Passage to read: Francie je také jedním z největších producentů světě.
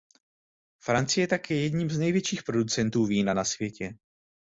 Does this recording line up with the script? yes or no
no